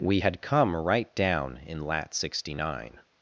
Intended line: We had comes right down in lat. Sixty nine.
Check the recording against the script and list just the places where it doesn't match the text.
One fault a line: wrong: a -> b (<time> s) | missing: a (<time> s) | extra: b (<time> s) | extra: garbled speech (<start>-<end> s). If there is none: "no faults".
wrong: comes -> come (0.4 s)